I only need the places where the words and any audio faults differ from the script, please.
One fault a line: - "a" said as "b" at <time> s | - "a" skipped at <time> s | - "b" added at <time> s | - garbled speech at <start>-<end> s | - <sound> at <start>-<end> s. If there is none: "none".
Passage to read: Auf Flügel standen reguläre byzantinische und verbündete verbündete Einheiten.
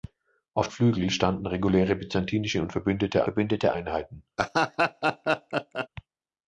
- laugh at 4.4-5.9 s